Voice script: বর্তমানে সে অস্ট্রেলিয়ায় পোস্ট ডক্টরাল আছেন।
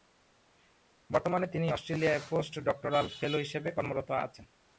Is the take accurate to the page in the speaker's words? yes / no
no